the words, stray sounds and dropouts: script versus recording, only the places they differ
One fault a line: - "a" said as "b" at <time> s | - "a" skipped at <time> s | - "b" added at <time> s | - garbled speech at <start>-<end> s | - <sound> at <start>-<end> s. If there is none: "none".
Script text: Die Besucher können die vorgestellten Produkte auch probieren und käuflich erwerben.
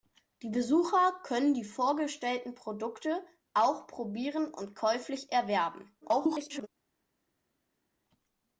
- garbled speech at 6.0-6.7 s